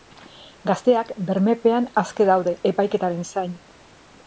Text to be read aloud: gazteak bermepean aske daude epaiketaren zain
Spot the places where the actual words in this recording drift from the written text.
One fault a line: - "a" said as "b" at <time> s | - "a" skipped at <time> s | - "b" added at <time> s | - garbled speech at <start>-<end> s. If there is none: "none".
none